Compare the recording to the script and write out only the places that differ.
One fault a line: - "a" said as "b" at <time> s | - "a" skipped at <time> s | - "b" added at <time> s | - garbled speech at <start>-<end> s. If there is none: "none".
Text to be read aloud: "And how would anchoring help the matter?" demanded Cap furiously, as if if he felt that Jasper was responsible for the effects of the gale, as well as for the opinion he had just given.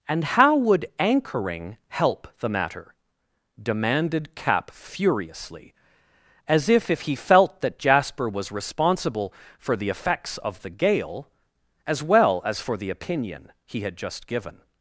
none